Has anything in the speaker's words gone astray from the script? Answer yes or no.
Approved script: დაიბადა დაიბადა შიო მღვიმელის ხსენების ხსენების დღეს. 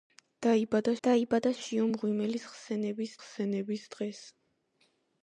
no